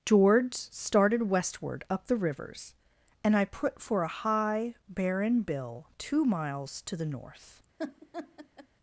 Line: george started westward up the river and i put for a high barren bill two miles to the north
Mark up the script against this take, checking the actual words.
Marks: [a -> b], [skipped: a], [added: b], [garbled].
george started westward up the [river -> rivers] and i put for a high barren bill two miles to the north